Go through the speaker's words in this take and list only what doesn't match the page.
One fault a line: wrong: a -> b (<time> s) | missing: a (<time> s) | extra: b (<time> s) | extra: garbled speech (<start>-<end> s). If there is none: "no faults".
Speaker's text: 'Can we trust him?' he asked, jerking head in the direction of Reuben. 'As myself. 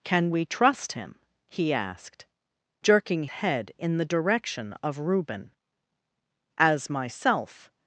no faults